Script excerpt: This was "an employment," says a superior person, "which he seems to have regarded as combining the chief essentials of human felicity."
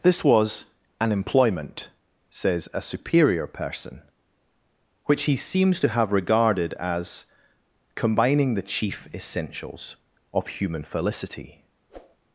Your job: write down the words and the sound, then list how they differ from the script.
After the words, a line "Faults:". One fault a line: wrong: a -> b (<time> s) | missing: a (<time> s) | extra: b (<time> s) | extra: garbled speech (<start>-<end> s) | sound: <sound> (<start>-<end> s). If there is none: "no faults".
This was "an employment," says a superior person, "which he seems to have regarded as combining the chief essentials of human felicity."
Faults:
sound: whoosh (11.9-12.2 s)